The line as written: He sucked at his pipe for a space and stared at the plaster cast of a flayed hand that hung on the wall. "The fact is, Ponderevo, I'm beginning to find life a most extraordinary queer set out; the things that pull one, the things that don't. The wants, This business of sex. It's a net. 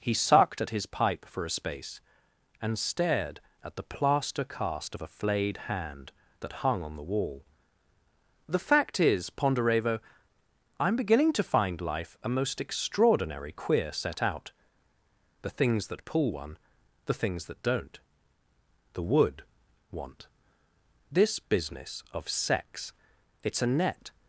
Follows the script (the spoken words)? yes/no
no